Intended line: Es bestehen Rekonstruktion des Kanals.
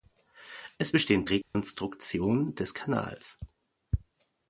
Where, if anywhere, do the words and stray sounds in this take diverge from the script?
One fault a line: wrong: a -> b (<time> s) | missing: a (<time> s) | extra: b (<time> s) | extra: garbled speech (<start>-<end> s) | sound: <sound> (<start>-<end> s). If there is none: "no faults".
sound: dropout (1.4-1.5 s)